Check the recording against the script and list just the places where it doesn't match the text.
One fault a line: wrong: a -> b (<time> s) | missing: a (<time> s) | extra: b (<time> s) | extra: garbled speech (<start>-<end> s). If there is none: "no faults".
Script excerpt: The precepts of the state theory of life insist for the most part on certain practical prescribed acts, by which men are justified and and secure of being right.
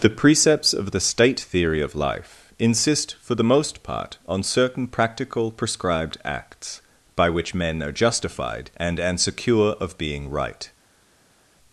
no faults